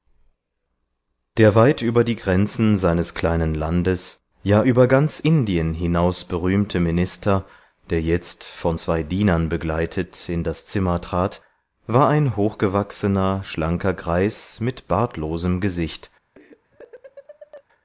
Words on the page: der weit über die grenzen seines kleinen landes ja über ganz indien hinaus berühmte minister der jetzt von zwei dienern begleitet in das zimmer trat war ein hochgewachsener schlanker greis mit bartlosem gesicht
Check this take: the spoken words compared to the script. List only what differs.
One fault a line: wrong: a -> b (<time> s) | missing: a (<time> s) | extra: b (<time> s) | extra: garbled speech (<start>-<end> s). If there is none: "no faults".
no faults